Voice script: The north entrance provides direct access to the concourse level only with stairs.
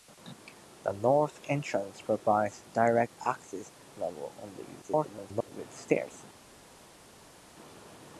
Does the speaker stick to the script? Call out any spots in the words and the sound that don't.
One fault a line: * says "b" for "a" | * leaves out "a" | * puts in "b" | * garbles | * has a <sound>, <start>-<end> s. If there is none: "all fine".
* leaves out "to the concourse"
* garbles